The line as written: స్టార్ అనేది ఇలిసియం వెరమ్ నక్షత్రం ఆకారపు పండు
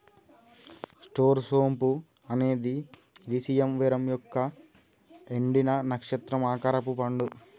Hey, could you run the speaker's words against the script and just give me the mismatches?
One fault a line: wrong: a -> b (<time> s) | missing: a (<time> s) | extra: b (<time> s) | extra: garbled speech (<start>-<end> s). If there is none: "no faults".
extra: సోంపు (1.4 s)
extra: యొక్క ఎండిన (4.1 s)